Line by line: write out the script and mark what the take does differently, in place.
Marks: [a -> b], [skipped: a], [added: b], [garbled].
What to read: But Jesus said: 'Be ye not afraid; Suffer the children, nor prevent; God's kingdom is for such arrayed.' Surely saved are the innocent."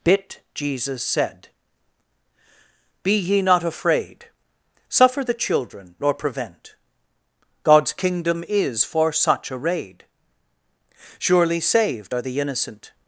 [But -> Bit] Jesus said: 'Be ye not afraid; Suffer the children, nor prevent; God's kingdom is for such arrayed.' Surely saved are the innocent."